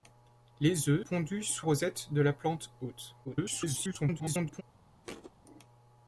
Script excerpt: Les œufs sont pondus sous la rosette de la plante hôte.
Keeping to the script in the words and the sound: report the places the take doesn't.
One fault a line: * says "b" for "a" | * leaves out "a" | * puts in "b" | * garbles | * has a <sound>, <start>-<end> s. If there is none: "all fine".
* leaves out "sont"
* leaves out "la"
* garbles
* has a thud, 5.0-5.3 s